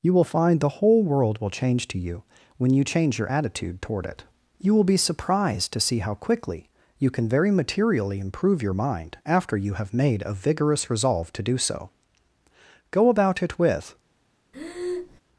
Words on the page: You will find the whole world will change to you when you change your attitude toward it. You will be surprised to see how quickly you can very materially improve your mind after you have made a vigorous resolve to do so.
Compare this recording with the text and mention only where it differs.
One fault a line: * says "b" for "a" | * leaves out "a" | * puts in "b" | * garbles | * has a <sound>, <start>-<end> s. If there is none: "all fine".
* puts in "Go about it with"
* has a breath, 14.5-15.2 s